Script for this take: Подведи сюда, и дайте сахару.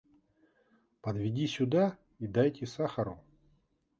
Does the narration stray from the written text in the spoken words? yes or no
no